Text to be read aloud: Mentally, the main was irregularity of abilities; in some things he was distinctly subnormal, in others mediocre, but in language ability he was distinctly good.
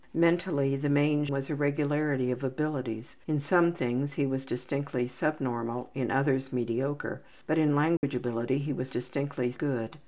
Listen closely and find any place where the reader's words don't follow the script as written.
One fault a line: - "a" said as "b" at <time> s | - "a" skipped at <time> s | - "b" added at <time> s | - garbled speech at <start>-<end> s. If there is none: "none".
none